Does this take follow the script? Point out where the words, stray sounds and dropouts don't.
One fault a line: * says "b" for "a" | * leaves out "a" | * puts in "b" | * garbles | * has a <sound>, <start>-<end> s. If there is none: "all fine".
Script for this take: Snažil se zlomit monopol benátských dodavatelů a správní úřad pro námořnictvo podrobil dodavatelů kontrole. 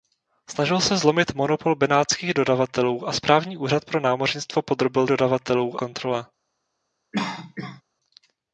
* has a cough, 7.1-7.8 s